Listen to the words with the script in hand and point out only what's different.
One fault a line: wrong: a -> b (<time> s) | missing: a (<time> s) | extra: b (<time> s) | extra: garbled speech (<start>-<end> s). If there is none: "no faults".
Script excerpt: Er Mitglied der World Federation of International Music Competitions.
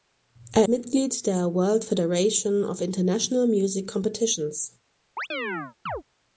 no faults